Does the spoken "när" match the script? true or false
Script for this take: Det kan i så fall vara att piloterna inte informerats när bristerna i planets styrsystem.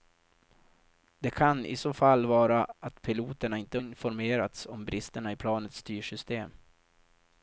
false